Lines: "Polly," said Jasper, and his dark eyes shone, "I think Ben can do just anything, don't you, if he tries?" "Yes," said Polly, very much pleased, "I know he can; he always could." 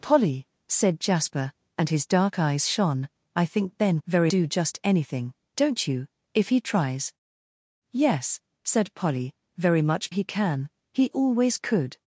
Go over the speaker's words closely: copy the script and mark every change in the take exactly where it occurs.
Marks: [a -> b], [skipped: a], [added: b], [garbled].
"Polly," said Jasper, and his dark eyes shone, "I think Ben [can -> very] do just anything, don't you, if he tries?" "Yes," said Polly, very much [skipped: pleased, "I know] he can; he always could."